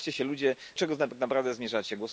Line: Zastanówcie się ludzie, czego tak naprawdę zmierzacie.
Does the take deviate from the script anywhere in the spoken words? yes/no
no